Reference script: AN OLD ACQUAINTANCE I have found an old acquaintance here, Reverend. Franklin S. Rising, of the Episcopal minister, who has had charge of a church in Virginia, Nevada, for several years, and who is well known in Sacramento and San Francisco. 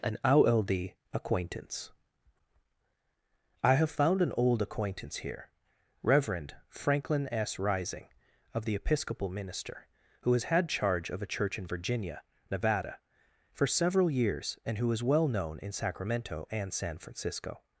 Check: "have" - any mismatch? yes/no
no